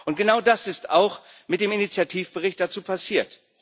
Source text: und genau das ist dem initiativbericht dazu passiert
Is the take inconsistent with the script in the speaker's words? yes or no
yes